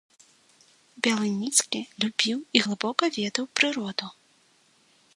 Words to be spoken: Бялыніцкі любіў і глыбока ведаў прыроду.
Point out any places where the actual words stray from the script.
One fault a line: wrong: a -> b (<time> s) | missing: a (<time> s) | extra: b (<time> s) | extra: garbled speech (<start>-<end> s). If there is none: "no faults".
no faults